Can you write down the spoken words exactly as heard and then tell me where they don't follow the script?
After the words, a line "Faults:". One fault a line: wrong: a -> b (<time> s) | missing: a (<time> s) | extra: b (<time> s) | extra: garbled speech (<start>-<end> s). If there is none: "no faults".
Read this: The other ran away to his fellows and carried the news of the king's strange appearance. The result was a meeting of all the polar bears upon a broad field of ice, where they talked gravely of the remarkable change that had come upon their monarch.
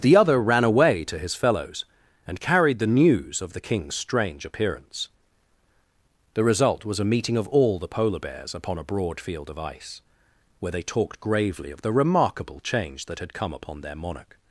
The other ran away to his fellows and carried the news of the king's strange appearance. The result was a meeting of all the polar bears upon a broad field of ice, where they talked gravely of the remarkable change that had come upon their monarch.
Faults:
no faults